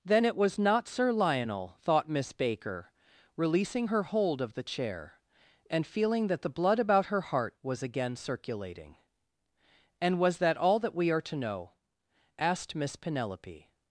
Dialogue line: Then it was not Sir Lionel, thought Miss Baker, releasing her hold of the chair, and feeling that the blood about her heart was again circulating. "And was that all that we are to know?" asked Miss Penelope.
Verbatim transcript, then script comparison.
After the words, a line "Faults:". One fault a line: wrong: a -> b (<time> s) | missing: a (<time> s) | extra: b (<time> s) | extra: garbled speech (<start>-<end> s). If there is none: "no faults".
Then it was not Sir Lionel, thought Miss Baker, releasing her hold of the chair, and feeling that the blood about her heart was again circulating. "And was that all that we are to know?" asked Miss Penelope.
Faults:
no faults